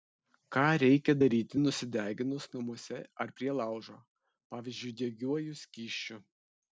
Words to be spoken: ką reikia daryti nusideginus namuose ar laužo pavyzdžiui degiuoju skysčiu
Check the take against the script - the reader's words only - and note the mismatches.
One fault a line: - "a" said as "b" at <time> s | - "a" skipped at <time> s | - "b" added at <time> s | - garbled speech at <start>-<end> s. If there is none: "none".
- "prie" added at 3.4 s